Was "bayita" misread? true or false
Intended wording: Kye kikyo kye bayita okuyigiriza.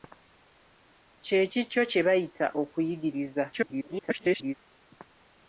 false